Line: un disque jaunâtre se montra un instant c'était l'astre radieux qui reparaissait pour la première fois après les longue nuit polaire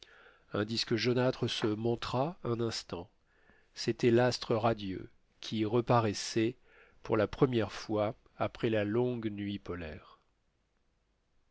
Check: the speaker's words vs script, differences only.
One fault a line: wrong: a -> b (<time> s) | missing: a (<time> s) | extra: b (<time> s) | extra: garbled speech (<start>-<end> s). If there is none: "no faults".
wrong: les -> la (8.7 s)